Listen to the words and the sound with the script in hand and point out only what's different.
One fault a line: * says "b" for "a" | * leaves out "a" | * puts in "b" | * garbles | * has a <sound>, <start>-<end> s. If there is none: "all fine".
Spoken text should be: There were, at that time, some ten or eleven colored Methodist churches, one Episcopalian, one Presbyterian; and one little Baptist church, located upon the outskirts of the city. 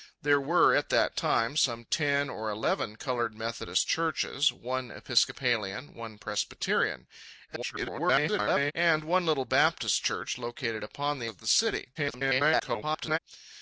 * garbles
* leaves out "outskirts"
* garbles